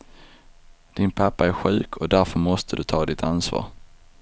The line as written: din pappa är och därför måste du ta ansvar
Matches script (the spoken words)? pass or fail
fail